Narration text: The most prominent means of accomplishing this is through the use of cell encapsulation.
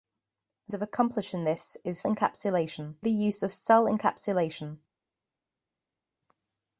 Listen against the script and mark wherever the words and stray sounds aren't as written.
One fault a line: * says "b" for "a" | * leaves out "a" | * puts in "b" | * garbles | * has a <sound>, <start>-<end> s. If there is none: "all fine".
* leaves out "most prominent means"
* says "encapsulation" for "through"